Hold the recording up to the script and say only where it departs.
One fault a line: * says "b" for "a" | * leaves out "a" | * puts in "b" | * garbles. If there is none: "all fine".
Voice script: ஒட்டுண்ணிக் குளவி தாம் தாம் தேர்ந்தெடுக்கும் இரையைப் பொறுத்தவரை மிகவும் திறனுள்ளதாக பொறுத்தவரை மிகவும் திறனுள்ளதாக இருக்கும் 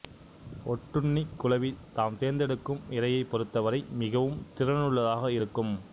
* leaves out "தாம்"
* leaves out "பொறுத்தவரை மிகவும் திறனுள்ளதாக"